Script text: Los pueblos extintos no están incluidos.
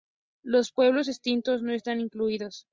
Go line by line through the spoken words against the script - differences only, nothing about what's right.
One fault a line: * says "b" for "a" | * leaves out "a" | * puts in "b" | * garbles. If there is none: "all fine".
all fine